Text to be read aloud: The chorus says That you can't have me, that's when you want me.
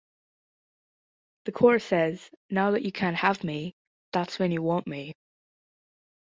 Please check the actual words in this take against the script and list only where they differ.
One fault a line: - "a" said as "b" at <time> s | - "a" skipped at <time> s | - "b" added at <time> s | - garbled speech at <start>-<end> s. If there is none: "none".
- "Now" added at 2.5 s